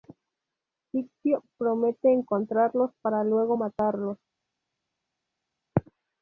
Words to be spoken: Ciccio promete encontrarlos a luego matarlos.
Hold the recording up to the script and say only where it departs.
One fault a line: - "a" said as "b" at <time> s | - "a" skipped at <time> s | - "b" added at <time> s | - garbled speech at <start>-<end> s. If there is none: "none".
- "a" said as "para" at 3.0 s